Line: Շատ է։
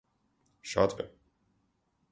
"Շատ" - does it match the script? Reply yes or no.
yes